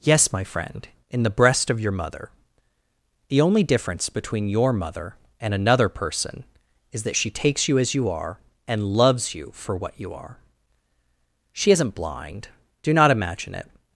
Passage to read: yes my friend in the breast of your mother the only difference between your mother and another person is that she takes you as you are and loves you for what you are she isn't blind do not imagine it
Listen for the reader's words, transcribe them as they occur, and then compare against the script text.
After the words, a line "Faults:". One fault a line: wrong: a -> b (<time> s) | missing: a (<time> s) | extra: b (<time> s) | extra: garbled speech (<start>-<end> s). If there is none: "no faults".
yes my friend in the breast of your mother the only difference between your mother and another person is that she takes you as you are and loves you for what you are she isn't blind do not imagine it
Faults:
no faults